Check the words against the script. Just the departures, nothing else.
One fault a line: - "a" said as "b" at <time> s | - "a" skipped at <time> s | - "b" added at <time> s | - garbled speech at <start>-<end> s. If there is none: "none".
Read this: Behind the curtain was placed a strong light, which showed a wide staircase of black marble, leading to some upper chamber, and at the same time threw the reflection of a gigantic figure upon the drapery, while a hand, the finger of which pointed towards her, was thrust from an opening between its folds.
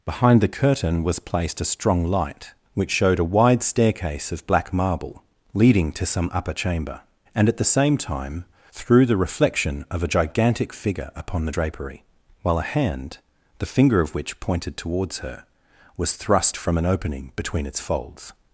none